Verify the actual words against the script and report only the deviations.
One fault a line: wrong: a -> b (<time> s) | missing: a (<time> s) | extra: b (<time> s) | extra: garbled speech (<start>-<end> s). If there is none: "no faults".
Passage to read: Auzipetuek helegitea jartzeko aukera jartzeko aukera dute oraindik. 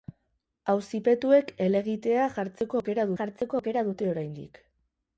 no faults